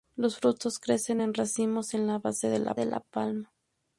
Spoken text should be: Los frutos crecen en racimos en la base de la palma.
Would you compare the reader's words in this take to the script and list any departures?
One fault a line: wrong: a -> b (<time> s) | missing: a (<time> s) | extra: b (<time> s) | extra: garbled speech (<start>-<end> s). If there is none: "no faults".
extra: de la (2.8 s)